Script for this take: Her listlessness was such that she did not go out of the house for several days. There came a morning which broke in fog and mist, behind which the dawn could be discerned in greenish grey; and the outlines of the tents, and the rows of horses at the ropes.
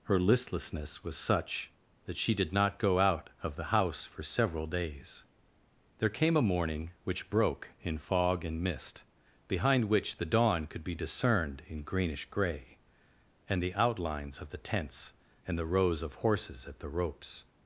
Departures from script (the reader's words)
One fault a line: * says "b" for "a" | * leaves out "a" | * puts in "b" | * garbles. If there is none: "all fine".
all fine